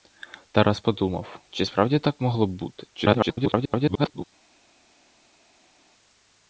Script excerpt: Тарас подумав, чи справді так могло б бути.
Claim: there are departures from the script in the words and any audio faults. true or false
true